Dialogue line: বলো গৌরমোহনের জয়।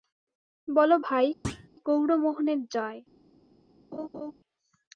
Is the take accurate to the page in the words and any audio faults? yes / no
no